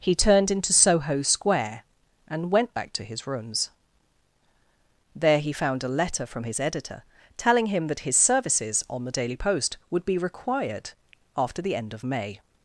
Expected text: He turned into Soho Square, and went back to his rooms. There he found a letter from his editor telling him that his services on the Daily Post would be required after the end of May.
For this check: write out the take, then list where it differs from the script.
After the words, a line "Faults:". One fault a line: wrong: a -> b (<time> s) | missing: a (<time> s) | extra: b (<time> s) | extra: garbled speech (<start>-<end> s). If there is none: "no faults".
He turned into Soho Square, and went back to his rooms. There he found a letter from his editor telling him that his services on the Daily Post would be required after the end of May.
Faults:
no faults